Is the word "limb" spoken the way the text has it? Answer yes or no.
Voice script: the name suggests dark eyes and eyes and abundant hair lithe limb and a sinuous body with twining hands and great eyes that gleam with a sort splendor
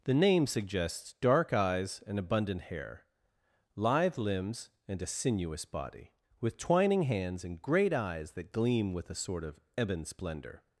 no